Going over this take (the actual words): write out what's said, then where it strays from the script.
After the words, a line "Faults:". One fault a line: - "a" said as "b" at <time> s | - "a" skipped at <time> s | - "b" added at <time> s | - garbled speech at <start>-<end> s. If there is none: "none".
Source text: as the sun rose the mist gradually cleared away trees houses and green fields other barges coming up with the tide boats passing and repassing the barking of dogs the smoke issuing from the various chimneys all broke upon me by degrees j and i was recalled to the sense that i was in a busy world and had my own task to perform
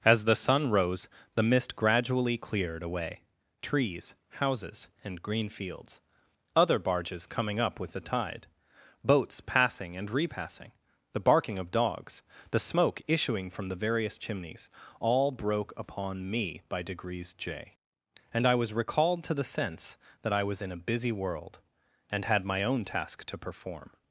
as the sun rose the mist gradually cleared away trees houses and green fields other barges coming up with the tide boats passing and repassing the barking of dogs the smoke issuing from the various chimneys all broke upon me by degrees j and i was recalled to the sense that i was in a busy world and had my own task to perform
Faults:
none